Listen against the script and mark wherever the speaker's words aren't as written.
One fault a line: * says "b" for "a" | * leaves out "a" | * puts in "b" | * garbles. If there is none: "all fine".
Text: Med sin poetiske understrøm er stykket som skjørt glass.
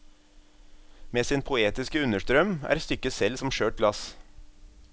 * puts in "selv"